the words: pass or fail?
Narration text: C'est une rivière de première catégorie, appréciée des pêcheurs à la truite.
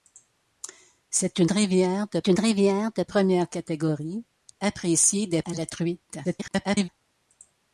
fail